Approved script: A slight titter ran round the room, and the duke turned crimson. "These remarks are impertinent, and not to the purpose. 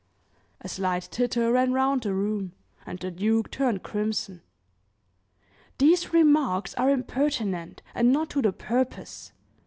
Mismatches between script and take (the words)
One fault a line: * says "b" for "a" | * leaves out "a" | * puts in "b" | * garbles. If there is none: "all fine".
all fine